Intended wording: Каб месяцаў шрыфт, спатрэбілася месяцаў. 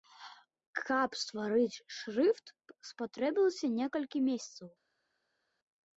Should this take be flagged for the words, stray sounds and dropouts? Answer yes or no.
yes